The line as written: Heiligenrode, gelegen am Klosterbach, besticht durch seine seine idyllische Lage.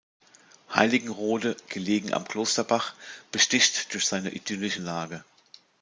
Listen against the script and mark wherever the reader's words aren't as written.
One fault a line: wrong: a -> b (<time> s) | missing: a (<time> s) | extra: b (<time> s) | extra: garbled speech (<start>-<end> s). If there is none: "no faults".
missing: seine (4.3 s)